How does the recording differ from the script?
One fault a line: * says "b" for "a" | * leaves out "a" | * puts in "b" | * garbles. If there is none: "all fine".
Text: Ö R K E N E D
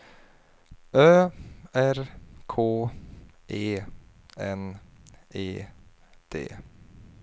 all fine